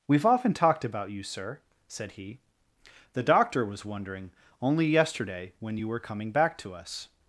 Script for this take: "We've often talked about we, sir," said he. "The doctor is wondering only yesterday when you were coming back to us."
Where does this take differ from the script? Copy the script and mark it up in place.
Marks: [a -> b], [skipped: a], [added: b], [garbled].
"We've often talked about [we, -> you] sir," said he. "The doctor [is -> was] wondering only yesterday when you were coming back to us."